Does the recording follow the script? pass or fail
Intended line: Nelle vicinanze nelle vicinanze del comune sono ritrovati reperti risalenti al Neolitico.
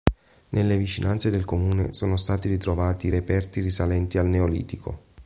fail